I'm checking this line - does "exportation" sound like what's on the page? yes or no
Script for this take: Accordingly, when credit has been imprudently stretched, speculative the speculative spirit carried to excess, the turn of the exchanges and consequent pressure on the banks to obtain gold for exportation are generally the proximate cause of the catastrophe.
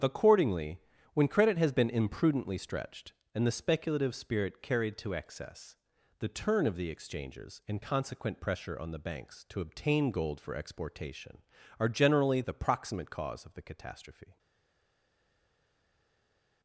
yes